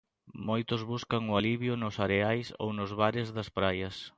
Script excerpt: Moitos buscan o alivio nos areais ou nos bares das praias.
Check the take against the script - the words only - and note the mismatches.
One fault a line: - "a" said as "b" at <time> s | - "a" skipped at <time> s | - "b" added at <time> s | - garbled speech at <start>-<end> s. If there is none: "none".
none